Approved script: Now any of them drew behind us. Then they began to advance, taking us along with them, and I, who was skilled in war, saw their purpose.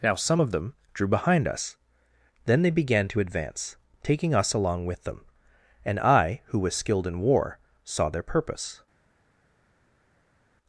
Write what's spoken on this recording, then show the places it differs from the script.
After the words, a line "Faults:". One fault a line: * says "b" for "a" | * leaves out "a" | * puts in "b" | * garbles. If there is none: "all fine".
Now some of them drew behind us. Then they began to advance, taking us along with them, and I, who was skilled in war, saw their purpose.
Faults:
* says "some" for "any"